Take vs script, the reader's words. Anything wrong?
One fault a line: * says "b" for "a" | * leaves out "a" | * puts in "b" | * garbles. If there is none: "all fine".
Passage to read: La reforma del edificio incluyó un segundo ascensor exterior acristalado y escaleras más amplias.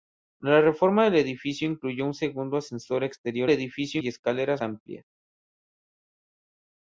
* says "edificio" for "acristalado"
* leaves out "más"